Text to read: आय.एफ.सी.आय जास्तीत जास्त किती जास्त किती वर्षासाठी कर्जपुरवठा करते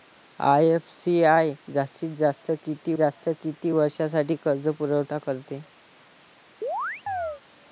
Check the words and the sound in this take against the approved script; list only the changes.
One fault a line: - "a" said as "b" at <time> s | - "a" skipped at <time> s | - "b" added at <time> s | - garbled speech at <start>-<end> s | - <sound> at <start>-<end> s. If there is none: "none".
- chirp at 6.6-7.4 s